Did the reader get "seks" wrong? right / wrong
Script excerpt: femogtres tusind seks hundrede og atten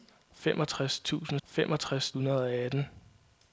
wrong